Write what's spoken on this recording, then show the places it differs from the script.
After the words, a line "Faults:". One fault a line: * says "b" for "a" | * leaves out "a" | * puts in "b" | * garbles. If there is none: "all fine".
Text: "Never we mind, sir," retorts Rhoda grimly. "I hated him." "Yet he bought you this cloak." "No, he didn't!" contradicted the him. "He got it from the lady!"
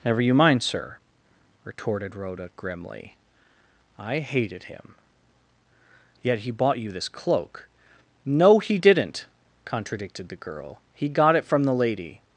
"Never you mind, sir," retorted Rhoda grimly. "I hated him." "Yet he bought you this cloak." "No, he didn't!" contradicted the girl. "He got it from the lady!"
Faults:
* says "you" for "we"
* says "retorted" for "retorts"
* says "girl" for "him"